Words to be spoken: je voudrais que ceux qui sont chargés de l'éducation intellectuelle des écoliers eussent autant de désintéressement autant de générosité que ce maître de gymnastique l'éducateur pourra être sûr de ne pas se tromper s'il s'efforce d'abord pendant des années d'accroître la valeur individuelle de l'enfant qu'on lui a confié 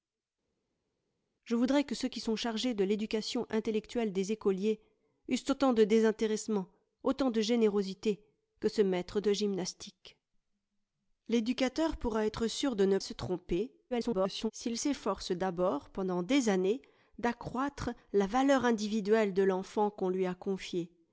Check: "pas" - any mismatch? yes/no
yes